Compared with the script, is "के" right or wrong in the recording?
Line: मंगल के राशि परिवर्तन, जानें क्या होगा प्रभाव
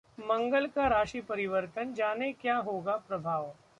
wrong